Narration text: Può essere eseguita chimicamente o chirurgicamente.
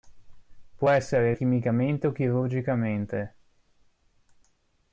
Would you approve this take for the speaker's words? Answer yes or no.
no